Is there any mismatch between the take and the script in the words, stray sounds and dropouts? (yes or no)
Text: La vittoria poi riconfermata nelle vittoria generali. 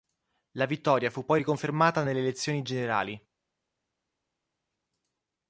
yes